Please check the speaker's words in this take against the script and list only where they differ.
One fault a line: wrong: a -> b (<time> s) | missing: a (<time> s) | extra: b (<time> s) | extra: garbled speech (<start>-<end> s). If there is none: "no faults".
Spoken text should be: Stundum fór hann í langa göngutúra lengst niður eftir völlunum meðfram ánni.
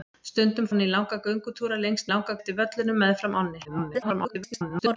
missing: fór (0.7 s)
wrong: niður -> langa (2.1 s)
extra: garbled speech (3.6-5.0 s)